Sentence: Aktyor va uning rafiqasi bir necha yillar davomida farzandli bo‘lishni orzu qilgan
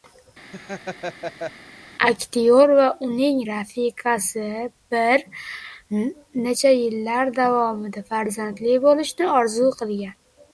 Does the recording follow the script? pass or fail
pass